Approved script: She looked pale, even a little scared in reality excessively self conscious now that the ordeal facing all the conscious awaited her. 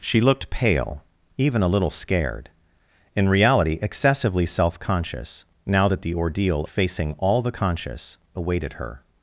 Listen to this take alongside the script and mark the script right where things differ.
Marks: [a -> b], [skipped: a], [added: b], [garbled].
She looked pale, even a little scared in reality excessively self conscious now that the ordeal facing all the conscious awaited her.